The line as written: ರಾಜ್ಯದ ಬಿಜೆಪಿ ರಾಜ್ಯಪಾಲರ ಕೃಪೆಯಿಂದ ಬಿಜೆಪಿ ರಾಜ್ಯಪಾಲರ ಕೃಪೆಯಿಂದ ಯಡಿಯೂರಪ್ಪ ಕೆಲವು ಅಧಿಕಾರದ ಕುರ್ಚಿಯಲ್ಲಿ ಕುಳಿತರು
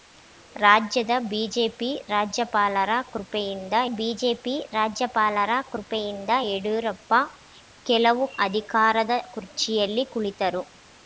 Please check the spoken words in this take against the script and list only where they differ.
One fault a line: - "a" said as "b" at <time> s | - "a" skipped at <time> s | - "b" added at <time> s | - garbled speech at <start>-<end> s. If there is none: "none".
none